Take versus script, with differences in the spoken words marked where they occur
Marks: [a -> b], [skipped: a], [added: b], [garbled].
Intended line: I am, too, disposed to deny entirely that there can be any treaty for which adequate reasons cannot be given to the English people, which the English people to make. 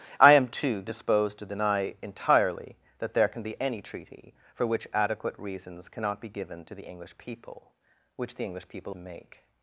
I am, too, disposed to deny entirely that there can be any treaty for which adequate reasons cannot be given to the English people, which the English people to make.